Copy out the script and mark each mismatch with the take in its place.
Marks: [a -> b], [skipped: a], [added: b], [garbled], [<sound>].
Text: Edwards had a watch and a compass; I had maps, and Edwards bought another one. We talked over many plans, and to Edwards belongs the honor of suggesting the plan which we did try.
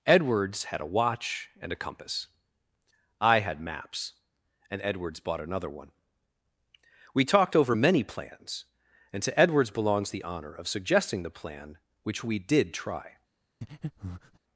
Edwards had a watch and a compass; I had maps, and Edwards bought another one. We talked over many plans, and to Edwards belongs the honor of suggesting the plan which we did try. [breath]